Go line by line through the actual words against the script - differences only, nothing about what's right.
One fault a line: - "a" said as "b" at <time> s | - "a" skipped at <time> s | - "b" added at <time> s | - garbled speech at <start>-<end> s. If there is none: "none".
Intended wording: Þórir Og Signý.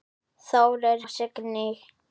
none